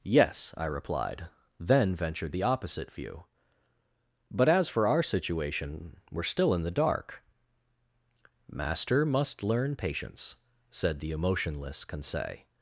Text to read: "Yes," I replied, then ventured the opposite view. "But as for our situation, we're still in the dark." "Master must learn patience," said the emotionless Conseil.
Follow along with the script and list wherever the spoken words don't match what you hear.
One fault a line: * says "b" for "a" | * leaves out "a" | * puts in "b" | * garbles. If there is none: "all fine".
all fine